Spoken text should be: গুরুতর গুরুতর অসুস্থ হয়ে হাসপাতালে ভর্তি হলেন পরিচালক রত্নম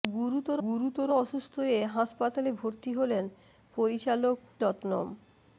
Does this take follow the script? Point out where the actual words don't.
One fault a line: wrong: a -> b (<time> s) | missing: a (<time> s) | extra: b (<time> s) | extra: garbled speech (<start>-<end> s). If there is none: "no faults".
no faults